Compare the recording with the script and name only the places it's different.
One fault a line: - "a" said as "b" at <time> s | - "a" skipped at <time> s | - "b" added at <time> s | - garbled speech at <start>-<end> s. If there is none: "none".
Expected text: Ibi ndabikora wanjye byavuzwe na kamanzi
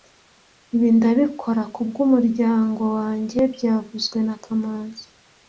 - "kubwumuryango" added at 1.7 s